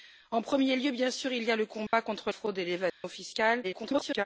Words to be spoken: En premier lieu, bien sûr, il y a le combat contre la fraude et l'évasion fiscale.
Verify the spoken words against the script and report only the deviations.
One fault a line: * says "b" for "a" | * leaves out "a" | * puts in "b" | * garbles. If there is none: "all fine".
* leaves out "la"
* garbles